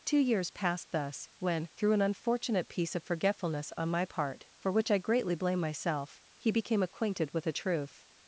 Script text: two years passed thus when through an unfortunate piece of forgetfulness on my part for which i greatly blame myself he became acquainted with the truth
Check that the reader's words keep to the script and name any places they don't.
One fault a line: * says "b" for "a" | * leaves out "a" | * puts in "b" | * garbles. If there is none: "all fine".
* says "a" for "the"